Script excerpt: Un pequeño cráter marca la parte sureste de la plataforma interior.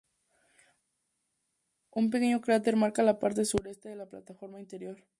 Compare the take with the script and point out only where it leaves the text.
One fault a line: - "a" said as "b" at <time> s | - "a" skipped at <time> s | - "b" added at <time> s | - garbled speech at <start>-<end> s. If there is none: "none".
none